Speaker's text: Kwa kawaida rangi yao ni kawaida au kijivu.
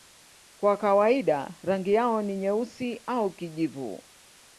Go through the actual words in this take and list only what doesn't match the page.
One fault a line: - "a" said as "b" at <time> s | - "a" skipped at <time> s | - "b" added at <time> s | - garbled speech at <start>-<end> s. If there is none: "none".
- "kawaida" said as "nyeusi" at 2.4 s